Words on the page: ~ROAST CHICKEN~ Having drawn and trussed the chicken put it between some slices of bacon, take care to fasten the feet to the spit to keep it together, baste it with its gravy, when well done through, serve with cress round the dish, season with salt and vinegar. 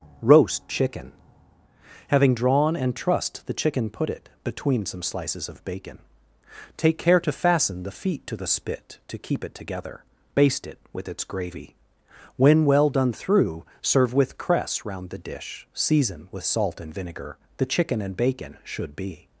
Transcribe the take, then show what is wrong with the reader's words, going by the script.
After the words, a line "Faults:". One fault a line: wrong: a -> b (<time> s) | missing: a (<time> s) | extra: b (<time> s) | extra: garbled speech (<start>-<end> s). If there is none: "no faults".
~ROAST CHICKEN~ Having drawn and trussed the chicken put it between some slices of bacon, take care to fasten the feet to the spit to keep it together, baste it with its gravy, when well done through, serve with cress round the dish, season with salt and vinegar. The chicken and bacon should be
Faults:
extra: The chicken and bacon should be (17.6 s)